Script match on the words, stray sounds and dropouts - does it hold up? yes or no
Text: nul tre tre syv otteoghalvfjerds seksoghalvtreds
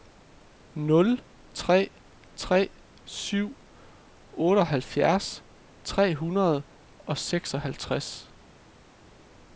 no